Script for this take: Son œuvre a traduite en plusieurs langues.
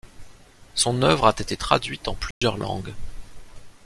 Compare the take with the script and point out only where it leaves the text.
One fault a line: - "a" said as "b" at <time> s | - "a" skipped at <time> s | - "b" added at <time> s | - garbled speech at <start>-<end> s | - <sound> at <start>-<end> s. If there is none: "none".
- "été" added at 1.4 s
- dropout at 2.3-2.4 s